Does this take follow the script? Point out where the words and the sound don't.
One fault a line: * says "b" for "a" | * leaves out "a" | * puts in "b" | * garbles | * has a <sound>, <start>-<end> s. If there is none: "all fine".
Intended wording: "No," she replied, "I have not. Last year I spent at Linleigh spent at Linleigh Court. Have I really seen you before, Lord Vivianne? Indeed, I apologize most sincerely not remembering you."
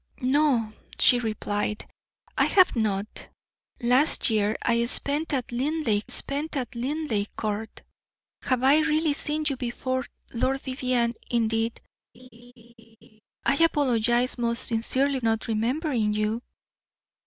* has a laugh, 12.1-13.2 s